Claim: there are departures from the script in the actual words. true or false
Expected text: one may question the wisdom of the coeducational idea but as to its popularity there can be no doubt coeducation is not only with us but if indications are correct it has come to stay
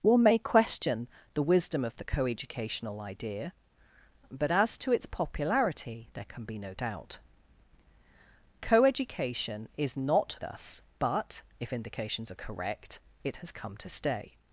true